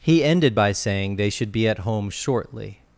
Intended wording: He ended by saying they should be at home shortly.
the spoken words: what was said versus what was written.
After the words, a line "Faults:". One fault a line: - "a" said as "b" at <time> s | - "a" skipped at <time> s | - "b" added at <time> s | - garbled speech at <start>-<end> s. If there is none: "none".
He ended by saying they should be at home shortly.
Faults:
none